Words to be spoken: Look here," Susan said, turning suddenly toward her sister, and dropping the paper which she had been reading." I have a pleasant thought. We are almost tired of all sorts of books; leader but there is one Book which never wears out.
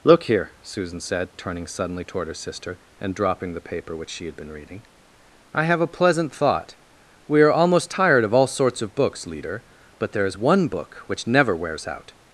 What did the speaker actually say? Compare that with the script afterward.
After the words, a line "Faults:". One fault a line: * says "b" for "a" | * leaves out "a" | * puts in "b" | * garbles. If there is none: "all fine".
Look here," Susan said, turning suddenly toward her sister, and dropping the paper which she had been reading." I have a pleasant thought. We are almost tired of all sorts of books; leader but there is one Book which never wears out.
Faults:
all fine